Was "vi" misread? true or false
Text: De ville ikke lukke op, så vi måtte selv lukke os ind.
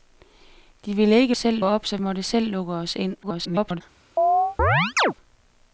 true